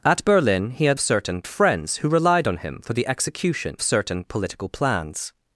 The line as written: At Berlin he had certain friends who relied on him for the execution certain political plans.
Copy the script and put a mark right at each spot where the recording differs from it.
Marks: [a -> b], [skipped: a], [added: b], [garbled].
At Berlin he had certain friends who relied on him for the execution certain political plans.